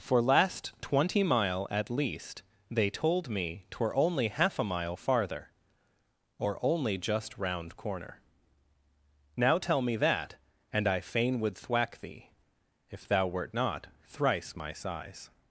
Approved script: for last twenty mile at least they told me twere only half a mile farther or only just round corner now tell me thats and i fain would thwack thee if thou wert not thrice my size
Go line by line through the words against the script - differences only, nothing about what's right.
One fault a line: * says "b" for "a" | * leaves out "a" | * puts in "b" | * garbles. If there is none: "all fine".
* says "that" for "thats"